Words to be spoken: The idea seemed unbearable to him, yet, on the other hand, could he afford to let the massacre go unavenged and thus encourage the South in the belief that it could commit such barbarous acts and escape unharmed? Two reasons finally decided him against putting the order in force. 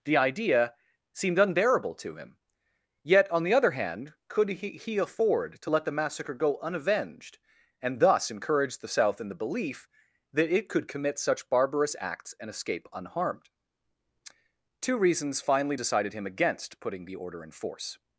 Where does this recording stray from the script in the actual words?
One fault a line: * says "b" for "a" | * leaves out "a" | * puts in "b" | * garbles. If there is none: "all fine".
* puts in "he"